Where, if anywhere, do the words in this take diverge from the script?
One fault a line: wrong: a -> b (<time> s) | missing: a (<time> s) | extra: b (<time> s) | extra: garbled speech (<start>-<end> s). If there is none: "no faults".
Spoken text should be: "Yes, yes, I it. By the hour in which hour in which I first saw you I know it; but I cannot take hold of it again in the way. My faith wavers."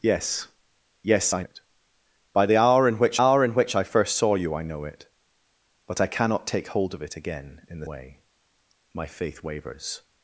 no faults